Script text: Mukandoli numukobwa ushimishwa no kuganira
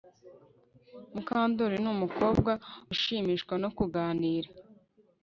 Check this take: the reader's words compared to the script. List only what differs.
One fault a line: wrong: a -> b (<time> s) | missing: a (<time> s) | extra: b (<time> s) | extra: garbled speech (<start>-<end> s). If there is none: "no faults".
no faults